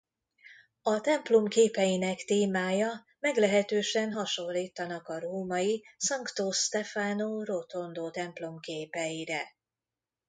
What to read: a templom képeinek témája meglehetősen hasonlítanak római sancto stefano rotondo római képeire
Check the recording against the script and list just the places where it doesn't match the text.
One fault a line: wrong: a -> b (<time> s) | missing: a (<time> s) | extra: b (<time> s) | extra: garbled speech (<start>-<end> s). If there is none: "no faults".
extra: a (5.1 s)
wrong: római -> templom (8.1 s)